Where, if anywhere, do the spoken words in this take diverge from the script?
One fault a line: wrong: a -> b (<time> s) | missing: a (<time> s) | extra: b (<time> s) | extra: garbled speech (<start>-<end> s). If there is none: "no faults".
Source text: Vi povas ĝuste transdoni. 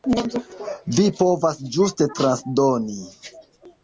no faults